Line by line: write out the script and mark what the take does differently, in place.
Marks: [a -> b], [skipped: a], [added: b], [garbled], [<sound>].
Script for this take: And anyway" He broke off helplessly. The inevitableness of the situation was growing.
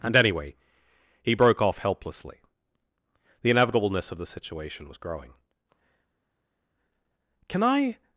And anyway" He broke off helplessly. The inevitableness of the situation was growing. [added: Can I]